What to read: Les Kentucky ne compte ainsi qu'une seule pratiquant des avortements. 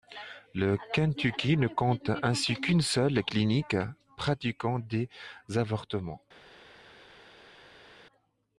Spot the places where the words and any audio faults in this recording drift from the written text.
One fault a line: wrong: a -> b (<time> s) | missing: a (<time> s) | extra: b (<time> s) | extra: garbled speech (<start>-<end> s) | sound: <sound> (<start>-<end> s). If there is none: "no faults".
wrong: Les -> Le (0.6 s)
extra: clinique (3.2 s)